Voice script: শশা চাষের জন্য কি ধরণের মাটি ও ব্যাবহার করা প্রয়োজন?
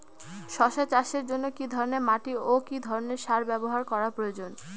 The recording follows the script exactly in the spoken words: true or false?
false